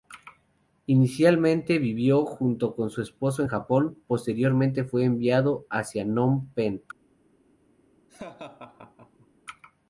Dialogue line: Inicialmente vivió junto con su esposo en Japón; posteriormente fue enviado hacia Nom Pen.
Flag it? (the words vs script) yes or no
no